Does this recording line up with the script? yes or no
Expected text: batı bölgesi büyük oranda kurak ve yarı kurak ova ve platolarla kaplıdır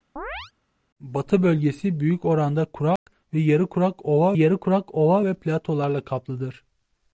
no